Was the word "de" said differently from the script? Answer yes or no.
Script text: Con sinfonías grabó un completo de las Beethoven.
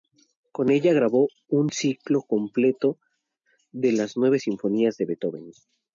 no